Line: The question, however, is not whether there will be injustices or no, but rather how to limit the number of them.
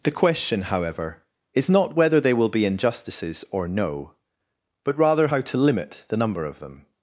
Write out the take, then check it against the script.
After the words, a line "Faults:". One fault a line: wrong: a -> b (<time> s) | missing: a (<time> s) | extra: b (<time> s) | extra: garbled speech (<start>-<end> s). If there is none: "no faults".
The question, however, is not whether they will be injustices or no, but rather how to limit the number of them.
Faults:
wrong: there -> they (2.2 s)